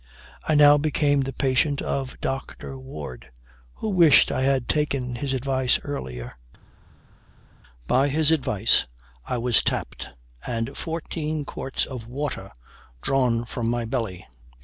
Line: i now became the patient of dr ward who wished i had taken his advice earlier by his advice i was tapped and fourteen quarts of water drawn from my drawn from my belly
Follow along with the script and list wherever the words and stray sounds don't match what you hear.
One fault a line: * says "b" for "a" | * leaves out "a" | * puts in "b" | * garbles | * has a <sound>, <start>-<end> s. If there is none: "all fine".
* leaves out "drawn from my"